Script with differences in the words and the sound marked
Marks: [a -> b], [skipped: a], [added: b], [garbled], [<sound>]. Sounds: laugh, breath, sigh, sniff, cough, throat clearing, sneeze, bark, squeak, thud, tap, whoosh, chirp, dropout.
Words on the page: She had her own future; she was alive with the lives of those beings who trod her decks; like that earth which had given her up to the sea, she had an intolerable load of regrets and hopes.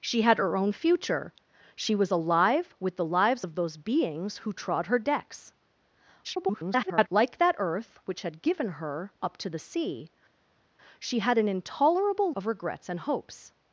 She had her own future; she was alive with the lives of those beings who trod her decks; [garbled] like that earth which had given her up to the sea, she had an intolerable [skipped: load] of regrets and hopes.